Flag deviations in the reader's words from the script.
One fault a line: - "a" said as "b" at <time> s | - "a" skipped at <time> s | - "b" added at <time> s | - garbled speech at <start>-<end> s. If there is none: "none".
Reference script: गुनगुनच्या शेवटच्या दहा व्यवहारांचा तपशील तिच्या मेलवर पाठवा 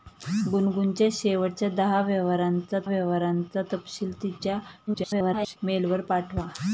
- "व्यवहारांचा" added at 2.8 s
- garbled speech at 4.9-5.6 s